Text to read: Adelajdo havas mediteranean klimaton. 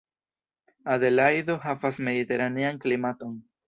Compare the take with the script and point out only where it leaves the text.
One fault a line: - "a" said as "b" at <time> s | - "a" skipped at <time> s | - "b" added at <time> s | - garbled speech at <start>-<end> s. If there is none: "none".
none